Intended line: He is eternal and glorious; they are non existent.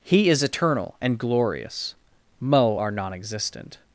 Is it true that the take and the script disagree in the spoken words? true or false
true